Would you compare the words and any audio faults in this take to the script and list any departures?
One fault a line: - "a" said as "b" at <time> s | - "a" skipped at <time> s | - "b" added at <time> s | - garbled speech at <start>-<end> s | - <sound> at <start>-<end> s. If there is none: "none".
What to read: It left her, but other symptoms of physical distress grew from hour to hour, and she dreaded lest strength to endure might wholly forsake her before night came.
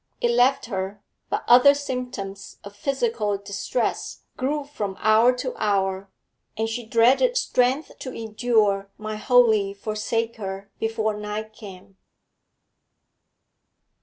- "lest" skipped at 7.4 s